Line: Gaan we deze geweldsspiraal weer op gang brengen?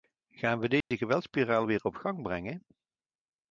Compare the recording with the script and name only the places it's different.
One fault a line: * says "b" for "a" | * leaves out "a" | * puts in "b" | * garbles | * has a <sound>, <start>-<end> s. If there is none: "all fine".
* has a dropout, 0.8-0.9 s